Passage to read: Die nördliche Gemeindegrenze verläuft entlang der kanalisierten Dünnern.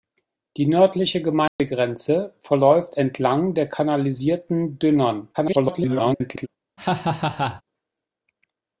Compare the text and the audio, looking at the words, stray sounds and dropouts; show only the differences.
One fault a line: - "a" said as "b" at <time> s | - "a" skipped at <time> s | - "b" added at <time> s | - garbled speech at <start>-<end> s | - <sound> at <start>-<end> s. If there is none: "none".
- dropout at 1.5-1.6 s
- garbled speech at 5.3-6.5 s
- laugh at 6.8-7.6 s